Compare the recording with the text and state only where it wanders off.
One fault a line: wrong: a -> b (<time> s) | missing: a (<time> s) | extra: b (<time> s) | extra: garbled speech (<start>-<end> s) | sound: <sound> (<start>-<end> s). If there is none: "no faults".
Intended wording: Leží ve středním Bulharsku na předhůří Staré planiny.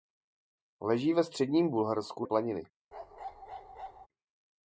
missing: na předhůří Staré (2.2 s)
sound: bark (2.9-4.1 s)